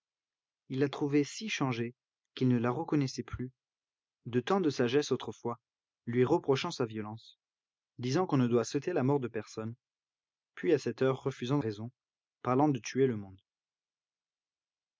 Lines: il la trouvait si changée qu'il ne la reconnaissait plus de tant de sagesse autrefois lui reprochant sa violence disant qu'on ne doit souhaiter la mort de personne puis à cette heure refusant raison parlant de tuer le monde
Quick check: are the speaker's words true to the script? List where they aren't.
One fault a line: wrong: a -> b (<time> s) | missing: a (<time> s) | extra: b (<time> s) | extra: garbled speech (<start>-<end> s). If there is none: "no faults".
no faults